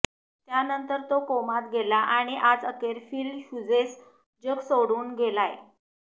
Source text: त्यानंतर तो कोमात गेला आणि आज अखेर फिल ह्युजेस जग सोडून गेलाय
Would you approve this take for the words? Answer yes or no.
yes